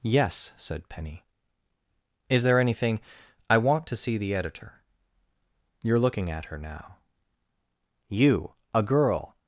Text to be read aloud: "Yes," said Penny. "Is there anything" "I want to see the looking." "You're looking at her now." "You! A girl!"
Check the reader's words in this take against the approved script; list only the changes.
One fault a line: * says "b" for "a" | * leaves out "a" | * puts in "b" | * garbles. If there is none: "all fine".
* says "editor" for "looking"